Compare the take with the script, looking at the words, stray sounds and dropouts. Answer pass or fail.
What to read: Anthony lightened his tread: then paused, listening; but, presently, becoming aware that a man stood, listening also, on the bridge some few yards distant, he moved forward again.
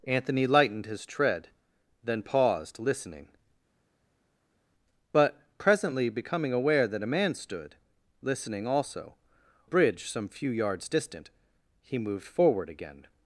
fail